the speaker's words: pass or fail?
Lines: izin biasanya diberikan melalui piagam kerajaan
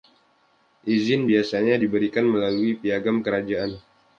pass